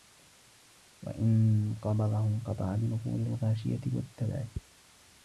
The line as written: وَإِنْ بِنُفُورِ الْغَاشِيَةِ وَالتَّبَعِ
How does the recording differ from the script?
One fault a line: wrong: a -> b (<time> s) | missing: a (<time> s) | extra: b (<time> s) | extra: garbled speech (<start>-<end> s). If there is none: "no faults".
extra: قَبَضَهُ انْقَطَعَ (1.8 s)